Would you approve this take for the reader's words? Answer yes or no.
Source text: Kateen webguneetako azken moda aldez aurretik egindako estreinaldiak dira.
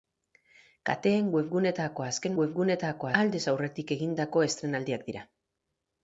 no